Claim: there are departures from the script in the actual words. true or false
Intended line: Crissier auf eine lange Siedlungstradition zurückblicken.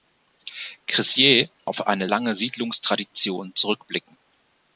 false